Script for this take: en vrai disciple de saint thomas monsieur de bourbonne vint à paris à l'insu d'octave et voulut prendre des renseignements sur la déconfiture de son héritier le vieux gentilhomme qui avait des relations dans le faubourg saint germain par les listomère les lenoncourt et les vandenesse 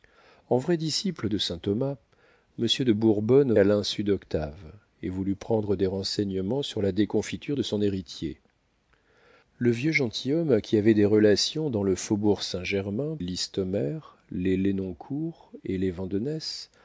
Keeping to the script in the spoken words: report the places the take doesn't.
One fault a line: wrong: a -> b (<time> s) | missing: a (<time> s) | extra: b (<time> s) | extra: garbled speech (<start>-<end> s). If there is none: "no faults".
missing: vint (3.5 s)
missing: paris à (3.6 s)
missing: par les (13.2 s)